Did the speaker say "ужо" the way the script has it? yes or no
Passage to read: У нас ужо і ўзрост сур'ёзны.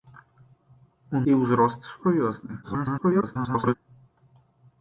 no